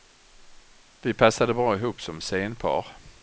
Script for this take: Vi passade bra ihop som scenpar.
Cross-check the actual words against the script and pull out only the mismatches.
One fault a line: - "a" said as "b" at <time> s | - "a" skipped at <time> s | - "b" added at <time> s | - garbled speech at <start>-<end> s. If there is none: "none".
none